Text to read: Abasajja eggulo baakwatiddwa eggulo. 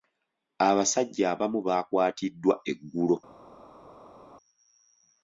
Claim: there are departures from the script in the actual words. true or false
true